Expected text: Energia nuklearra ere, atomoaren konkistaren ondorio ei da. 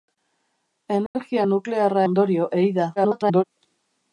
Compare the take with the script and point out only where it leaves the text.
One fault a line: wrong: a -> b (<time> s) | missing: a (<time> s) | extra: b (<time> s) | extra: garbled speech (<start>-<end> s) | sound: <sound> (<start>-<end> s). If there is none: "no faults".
sound: dropout (1.1-1.1 s)
missing: ere atomoaren konkistaren (2.0 s)
extra: garbled speech (3.0-3.4 s)